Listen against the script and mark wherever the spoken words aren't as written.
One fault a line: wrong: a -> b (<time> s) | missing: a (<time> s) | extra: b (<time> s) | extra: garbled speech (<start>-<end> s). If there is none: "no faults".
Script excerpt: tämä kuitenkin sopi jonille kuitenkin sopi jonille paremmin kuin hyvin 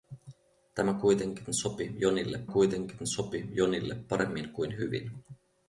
no faults